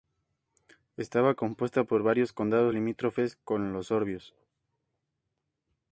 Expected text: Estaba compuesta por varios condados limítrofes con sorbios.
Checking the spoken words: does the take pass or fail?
fail